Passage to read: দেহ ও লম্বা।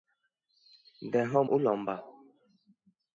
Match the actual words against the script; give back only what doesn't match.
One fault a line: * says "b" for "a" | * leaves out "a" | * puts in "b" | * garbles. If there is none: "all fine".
all fine